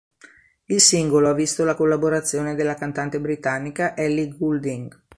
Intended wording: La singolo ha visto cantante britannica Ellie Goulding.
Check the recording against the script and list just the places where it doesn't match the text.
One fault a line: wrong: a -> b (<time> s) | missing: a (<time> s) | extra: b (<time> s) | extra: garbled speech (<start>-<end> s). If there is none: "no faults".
wrong: La -> Il (0.7 s)
extra: la collaborazione della (1.6 s)